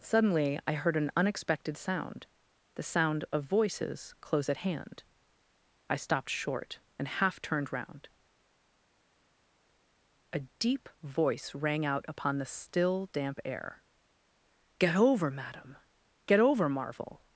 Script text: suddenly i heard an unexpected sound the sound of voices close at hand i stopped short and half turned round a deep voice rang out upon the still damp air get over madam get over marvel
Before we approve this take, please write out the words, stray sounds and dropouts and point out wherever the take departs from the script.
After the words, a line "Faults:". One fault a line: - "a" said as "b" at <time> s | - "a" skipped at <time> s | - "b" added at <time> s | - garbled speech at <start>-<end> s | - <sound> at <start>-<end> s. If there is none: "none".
suddenly i heard an unexpected sound the sound of voices close at hand i stopped short and half turned round a deep voice rang out upon the still damp air get over madam get over marvel
Faults:
none